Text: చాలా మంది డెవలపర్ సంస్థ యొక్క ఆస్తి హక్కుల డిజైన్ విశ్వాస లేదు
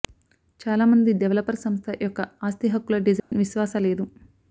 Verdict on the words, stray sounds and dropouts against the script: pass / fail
fail